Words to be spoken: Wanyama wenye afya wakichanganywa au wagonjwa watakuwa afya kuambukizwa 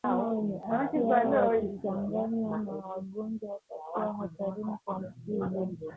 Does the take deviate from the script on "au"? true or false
true